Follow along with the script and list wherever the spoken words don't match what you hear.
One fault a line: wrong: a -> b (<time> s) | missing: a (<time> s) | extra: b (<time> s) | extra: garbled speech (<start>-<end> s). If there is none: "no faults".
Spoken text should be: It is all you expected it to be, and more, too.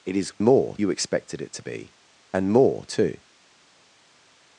wrong: all -> more (0.4 s)